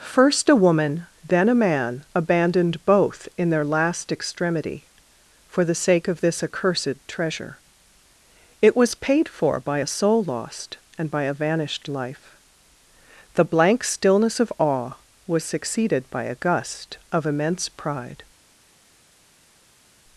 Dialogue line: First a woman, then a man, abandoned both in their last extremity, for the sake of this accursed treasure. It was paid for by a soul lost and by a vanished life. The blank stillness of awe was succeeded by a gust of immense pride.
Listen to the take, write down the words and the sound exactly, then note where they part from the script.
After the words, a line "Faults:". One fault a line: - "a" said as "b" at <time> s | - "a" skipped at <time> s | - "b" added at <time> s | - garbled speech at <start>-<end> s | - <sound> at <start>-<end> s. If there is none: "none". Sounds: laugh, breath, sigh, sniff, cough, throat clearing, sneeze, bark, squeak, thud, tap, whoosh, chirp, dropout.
First a woman, then a man, abandoned both in their last extremity, for the sake of this accursed treasure. It was paid for by a soul lost and by a vanished life. The blank stillness of awe was succeeded by a gust of immense pride.
Faults:
none